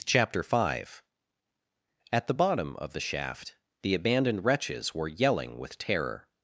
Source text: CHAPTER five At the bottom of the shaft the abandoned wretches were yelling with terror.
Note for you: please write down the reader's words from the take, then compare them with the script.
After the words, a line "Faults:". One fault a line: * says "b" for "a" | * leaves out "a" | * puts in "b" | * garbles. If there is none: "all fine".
CHAPTER five At the bottom of the shaft the abandoned wretches were yelling with terror.
Faults:
all fine